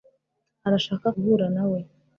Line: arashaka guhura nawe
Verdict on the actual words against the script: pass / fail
pass